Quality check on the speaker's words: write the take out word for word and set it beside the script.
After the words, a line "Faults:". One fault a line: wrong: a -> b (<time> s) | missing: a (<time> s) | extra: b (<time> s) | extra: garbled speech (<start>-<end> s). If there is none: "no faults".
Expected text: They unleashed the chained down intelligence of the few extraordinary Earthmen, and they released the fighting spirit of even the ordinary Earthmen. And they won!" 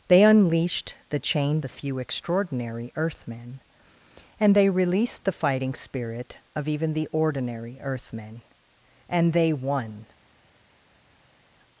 They unleashed the chained the few extraordinary Earthmen, and they released the fighting spirit of even the ordinary Earthmen. And they won!"
Faults:
missing: down intelligence of (1.6 s)